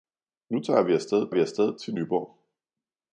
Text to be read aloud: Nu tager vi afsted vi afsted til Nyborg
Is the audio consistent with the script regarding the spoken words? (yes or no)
yes